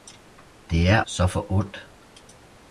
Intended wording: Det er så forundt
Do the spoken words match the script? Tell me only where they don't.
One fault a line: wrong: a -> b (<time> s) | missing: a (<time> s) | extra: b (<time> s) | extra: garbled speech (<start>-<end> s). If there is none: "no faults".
no faults